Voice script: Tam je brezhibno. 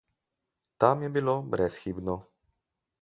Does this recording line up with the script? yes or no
no